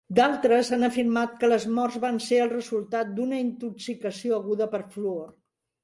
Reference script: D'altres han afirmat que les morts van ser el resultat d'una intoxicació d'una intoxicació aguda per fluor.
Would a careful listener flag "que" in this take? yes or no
no